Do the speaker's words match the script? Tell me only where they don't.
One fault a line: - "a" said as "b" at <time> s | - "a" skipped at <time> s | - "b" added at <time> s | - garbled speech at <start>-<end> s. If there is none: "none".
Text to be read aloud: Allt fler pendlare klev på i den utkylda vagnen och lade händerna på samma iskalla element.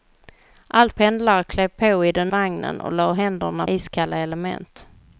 - "fler" skipped at 0.9 s
- "utkylda" skipped at 2.3 s
- "på samma" skipped at 3.7 s